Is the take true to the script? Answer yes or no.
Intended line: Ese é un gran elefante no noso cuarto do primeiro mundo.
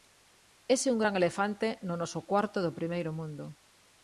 yes